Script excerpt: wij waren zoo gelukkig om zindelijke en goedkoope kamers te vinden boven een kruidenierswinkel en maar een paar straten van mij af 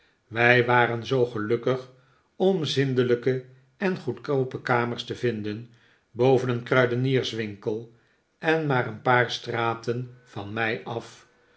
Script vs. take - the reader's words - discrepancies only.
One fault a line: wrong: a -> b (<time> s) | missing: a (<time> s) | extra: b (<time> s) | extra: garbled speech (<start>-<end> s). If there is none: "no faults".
no faults